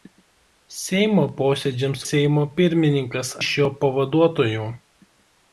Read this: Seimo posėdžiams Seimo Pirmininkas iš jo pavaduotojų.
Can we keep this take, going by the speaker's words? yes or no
yes